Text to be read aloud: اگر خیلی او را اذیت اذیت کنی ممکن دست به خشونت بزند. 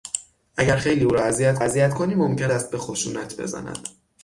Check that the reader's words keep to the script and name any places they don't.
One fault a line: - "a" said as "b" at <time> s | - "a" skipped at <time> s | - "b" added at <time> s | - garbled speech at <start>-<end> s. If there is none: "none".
none